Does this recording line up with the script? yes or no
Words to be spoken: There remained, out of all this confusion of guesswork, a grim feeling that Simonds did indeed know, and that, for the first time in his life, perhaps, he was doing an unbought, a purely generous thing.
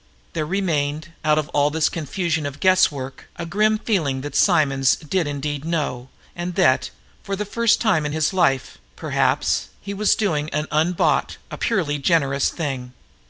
yes